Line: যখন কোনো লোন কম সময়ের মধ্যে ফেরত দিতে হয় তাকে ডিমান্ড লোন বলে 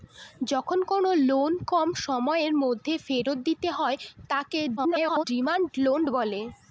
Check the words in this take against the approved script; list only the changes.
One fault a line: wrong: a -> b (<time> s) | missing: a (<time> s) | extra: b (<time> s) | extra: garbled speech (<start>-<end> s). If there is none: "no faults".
extra: garbled speech (4.8-5.2 s)